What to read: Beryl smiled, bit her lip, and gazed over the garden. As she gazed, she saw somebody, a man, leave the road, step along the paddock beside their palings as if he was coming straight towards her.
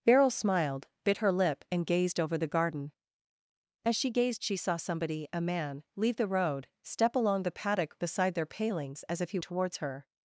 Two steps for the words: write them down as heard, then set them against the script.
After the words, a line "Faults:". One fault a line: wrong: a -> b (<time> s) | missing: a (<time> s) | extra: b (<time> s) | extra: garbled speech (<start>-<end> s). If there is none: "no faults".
Beryl smiled, bit her lip, and gazed over the garden. As she gazed, she saw somebody, a man, leave the road, step along the paddock beside their palings as if he towards her.
Faults:
missing: was coming straight (9.4 s)